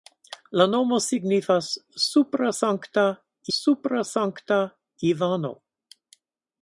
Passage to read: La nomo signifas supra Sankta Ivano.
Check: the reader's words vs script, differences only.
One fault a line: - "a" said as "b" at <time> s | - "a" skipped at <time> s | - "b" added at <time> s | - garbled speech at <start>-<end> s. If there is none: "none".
- "supra Sankta" added at 3.6 s